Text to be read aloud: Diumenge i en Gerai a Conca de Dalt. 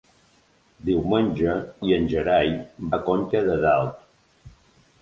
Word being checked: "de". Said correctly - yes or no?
yes